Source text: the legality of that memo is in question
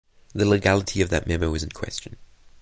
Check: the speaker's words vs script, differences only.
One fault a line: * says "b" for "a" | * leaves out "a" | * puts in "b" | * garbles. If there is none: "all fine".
all fine